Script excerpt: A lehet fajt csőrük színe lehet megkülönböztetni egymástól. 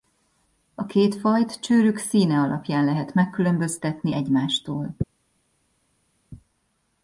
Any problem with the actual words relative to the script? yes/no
yes